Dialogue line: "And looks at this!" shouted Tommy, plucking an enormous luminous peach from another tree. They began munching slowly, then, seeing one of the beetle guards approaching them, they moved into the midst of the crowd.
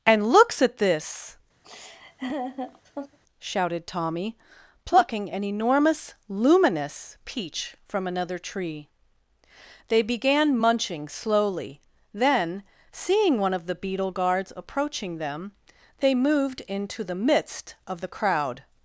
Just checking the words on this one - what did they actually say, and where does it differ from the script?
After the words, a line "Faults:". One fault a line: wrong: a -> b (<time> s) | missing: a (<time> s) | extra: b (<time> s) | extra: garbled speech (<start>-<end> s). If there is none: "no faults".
"And looks at this!" shouted Tommy, plucking an enormous luminous peach from another tree. They began munching slowly, then, seeing one of the beetle guards approaching them, they moved into the midst of the crowd.
Faults:
no faults